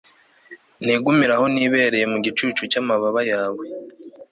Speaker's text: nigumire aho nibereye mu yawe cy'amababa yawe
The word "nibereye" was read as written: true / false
true